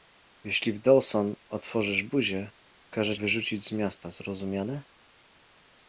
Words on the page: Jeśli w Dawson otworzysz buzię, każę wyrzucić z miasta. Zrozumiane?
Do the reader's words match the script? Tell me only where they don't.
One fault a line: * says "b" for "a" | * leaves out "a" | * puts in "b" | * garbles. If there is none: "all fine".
all fine